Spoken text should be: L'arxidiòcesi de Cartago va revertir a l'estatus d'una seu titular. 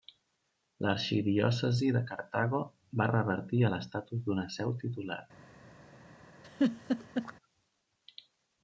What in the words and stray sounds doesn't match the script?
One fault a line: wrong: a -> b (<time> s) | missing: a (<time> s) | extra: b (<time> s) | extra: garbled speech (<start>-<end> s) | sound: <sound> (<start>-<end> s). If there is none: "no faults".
sound: laugh (6.4-7.3 s)